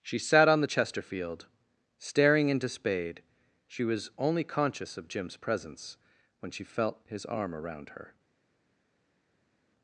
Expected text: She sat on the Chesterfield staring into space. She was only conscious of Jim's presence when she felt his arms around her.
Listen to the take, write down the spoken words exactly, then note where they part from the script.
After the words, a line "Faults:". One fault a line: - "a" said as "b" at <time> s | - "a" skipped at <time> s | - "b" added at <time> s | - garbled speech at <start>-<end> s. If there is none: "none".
She sat on the Chesterfield staring into spade. She was only conscious of Jim's presence when she felt his arm around her.
Faults:
- "space" said as "spade" at 2.7 s
- "arms" said as "arm" at 7.3 s